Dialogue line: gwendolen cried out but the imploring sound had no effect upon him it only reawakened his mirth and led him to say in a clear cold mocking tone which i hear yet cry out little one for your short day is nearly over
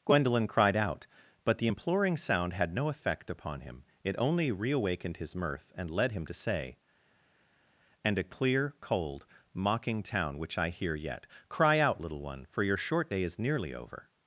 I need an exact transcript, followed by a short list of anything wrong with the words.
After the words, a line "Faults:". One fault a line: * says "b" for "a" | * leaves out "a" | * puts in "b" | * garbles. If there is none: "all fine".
gwendolen cried out but the imploring sound had no effect upon him it only reawakened his mirth and led him to say and a clear cold mocking town which i hear yet cry out little one for your short day is nearly over
Faults:
* says "and" for "in"
* says "town" for "tone"